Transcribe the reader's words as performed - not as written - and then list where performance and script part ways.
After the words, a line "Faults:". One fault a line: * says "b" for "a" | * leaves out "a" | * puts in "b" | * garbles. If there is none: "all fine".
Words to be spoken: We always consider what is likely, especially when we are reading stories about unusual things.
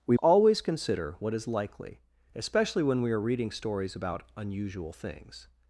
We always consider what is likely, especially when we are reading stories about unusual things.
Faults:
all fine